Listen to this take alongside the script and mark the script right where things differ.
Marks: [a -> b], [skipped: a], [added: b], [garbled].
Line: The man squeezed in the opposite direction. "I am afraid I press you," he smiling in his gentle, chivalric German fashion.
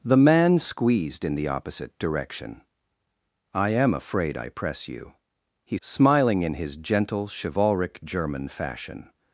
The man squeezed in the opposite direction. "I am afraid I press you," he smiling in his gentle, chivalric German fashion.